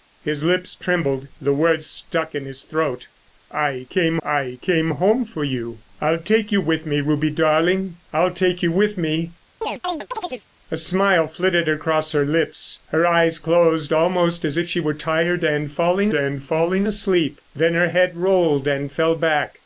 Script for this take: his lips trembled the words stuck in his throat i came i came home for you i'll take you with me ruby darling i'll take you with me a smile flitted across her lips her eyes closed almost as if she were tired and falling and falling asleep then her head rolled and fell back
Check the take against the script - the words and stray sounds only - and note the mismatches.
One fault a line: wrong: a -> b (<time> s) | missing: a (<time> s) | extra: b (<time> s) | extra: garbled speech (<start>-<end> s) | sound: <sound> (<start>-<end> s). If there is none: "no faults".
sound: chirp (9.6-10.5 s)